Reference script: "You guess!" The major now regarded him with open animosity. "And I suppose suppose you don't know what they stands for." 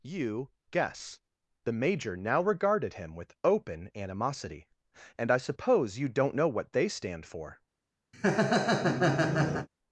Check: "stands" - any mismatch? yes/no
yes